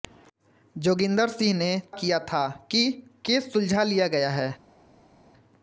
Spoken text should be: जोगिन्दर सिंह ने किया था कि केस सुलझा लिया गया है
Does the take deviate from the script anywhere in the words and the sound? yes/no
no